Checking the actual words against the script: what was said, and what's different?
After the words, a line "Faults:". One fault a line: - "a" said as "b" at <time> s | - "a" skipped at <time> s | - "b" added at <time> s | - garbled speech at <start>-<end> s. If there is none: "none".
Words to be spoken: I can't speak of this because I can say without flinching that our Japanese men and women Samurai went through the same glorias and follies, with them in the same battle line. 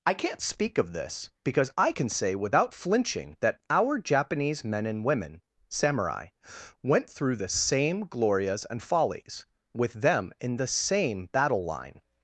I can't speak of this because I can say without flinching that our Japanese men and women Samurai went through the same glorias and follies, with them in the same battle line.
Faults:
none